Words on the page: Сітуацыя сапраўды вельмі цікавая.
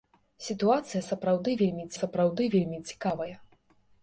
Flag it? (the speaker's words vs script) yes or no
yes